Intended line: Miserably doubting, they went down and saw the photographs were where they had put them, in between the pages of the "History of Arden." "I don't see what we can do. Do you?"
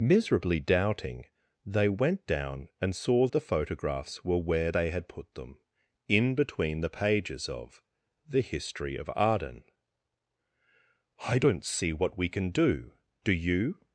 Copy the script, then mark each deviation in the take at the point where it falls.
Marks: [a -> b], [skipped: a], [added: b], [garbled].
Miserably doubting, they went down and saw the photographs were where they had put them, in between the pages of the "History of Arden." "I don't see what we can do. Do you?"